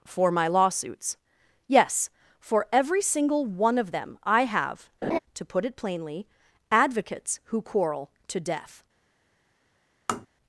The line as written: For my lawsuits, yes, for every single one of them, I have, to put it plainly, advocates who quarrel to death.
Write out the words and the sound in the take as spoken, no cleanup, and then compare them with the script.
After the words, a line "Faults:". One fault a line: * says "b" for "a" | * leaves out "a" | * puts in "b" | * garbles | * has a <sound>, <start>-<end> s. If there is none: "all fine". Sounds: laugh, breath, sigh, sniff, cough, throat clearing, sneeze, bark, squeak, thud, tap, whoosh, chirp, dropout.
For my lawsuits, yes, for every single one of them, I have, to put it plainly, advocates who quarrel to death.
Faults:
* has a laugh, 5.0-5.2 s
* has a tap, 10.1-10.3 s